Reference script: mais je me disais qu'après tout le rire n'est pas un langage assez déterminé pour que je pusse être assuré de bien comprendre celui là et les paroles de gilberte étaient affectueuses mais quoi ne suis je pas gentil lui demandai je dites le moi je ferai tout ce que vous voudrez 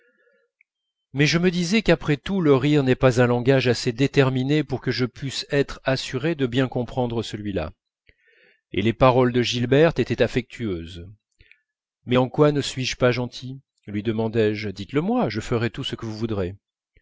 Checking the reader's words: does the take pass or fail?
fail